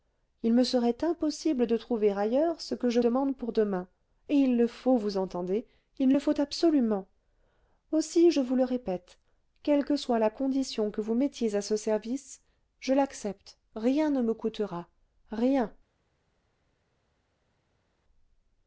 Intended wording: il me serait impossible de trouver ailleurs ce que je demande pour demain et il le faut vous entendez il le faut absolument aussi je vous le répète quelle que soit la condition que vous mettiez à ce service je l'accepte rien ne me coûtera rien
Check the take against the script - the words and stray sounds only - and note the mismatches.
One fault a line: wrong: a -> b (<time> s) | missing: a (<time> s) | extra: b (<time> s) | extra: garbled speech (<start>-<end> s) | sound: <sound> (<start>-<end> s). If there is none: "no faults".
no faults